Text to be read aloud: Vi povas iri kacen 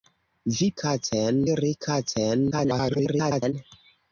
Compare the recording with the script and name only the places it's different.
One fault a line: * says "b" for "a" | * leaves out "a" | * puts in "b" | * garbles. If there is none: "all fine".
* says "kacen" for "povas"
* garbles